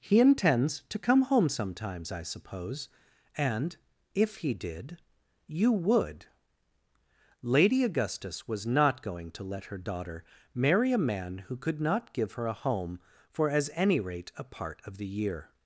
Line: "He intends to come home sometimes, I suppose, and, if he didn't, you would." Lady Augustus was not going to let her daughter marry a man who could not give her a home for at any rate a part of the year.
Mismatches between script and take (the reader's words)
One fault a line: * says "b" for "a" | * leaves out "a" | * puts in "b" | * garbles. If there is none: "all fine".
* says "did" for "didn't"
* says "as" for "at"